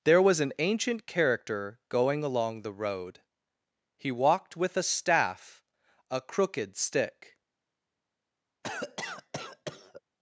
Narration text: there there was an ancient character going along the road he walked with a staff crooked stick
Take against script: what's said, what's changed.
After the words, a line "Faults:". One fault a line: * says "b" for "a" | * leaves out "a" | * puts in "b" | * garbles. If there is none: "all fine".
there was an ancient character going along the road he walked with a staff a crooked stick
Faults:
* leaves out "there"
* puts in "a"